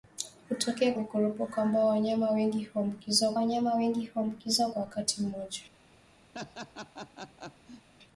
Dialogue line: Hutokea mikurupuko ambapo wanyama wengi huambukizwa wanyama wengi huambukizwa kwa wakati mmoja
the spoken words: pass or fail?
pass